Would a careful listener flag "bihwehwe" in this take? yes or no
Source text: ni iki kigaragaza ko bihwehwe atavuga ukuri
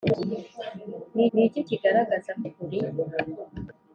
yes